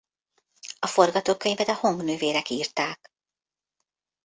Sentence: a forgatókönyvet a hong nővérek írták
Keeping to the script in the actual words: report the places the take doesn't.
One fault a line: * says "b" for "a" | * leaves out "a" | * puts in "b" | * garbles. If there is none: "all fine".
all fine